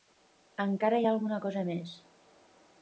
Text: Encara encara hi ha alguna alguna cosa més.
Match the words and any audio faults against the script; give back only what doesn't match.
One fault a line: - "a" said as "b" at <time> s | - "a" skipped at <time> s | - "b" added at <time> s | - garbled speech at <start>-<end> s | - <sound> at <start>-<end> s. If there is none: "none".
- "encara" skipped at 1.0 s
- "alguna" skipped at 1.4 s